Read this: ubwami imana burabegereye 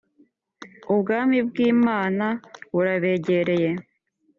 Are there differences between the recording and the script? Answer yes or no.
yes